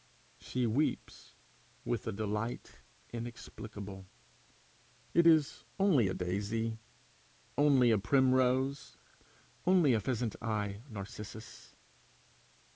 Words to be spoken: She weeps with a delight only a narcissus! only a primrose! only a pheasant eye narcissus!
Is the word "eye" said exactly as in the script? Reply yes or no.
yes